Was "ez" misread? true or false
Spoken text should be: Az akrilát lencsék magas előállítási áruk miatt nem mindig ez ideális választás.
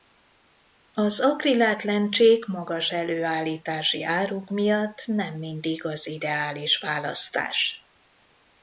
true